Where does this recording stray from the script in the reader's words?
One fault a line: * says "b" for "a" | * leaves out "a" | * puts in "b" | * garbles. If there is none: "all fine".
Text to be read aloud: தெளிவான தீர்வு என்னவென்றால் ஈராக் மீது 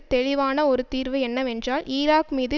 * puts in "ஒரு"